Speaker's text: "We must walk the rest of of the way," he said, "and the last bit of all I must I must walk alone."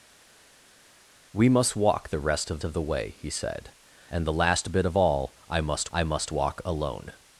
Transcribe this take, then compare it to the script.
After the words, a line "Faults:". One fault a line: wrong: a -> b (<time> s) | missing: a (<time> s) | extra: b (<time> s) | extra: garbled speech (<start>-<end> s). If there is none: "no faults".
"We must walk the rest of of the way," he said, "and the last bit of all I must I must walk alone."
Faults:
no faults